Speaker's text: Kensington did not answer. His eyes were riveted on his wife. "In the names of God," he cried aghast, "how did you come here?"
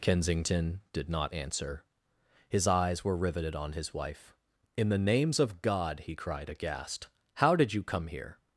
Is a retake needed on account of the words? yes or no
no